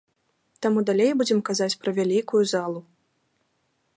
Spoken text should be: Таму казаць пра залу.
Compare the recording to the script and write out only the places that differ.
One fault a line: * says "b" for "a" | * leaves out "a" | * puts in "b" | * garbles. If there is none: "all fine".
* puts in "далей будзем"
* puts in "вялікую"